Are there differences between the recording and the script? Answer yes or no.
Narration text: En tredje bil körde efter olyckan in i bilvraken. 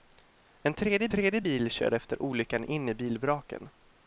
yes